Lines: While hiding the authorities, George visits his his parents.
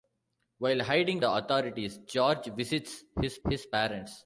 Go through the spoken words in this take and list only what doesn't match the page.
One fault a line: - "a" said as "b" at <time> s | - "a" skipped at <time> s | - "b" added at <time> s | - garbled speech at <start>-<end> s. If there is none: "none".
none